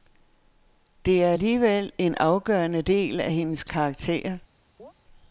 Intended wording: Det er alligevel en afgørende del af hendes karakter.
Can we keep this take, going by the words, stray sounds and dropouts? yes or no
no